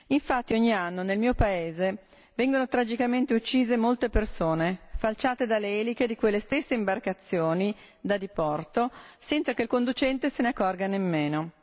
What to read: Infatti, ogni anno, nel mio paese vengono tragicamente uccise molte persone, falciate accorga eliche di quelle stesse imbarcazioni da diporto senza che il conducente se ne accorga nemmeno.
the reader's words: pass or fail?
fail